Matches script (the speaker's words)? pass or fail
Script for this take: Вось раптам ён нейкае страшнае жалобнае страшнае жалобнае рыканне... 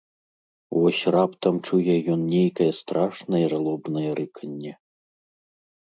fail